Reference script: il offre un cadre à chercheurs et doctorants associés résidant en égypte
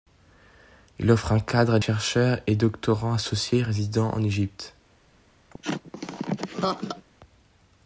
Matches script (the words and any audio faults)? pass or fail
fail